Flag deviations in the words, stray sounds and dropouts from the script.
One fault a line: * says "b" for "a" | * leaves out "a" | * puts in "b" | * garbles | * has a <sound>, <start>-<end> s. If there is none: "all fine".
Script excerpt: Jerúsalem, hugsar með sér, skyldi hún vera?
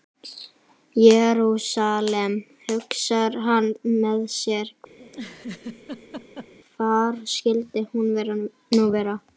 * puts in "hann"
* has a laugh, 5.0-6.5 s
* puts in "hvar"
* puts in "nú"